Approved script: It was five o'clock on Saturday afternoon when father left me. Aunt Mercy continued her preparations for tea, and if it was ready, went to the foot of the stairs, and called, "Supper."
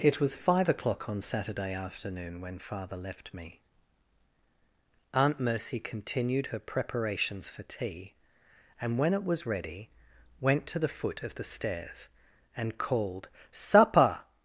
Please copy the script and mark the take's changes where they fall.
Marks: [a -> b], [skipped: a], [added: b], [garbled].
It was five o'clock on Saturday afternoon when father left me. Aunt Mercy continued her preparations for tea, and [if -> when] it was ready, went to the foot of the stairs, and called, "Supper."